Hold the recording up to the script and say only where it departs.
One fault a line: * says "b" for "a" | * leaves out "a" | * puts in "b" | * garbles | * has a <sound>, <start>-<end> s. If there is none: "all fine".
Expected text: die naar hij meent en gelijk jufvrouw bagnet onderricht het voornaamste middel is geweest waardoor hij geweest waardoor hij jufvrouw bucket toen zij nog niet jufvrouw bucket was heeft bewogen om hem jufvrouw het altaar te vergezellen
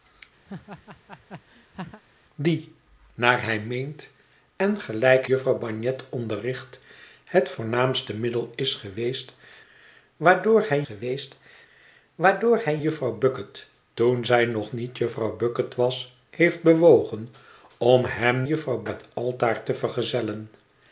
* has a laugh, 0.5-2.0 s